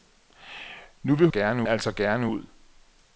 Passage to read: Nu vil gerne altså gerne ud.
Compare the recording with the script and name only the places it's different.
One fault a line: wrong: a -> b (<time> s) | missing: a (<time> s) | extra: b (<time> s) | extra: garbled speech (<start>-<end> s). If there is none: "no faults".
no faults